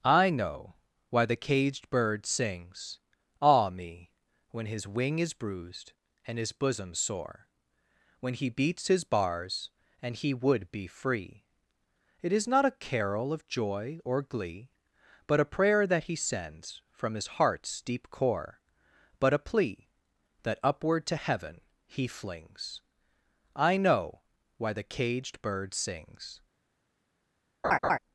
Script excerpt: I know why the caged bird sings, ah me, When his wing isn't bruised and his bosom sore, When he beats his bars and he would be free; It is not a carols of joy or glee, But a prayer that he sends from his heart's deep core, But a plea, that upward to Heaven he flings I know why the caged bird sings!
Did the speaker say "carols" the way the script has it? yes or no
no